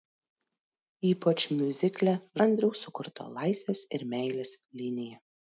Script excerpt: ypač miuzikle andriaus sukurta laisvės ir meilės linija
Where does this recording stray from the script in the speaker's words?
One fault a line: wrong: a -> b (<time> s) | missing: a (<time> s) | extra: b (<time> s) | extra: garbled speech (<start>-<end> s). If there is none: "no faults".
no faults